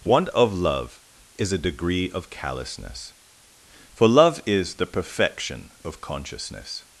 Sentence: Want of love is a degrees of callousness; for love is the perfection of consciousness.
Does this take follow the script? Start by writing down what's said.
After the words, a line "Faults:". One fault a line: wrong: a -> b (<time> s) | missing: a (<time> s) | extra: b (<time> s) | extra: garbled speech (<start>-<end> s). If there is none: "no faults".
Want of love is a degree of callousness; for love is the perfection of consciousness.
Faults:
wrong: degrees -> degree (1.6 s)